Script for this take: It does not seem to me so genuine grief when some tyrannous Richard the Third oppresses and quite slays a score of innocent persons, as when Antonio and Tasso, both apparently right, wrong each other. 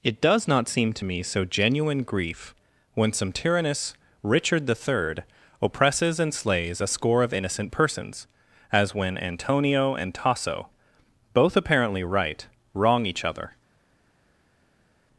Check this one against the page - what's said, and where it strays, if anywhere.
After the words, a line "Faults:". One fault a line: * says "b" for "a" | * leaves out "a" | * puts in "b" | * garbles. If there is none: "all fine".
It does not seem to me so genuine grief when some tyrannous Richard the Third oppresses and slays a score of innocent persons, as when Antonio and Tasso, both apparently right, wrong each other.
Faults:
* leaves out "quite"